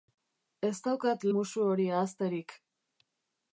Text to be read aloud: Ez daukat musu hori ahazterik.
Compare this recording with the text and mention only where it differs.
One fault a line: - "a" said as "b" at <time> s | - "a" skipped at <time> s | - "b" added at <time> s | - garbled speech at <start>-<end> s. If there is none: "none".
none